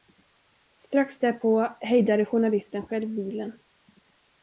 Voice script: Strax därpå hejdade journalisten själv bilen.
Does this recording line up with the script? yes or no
yes